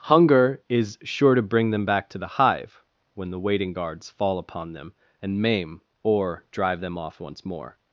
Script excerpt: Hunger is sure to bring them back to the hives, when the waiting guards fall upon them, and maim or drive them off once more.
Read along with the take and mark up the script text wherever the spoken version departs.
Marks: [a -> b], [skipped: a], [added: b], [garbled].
Hunger is sure to bring them back to the [hives, -> hive] when the waiting guards fall upon them, and maim or drive them off once more.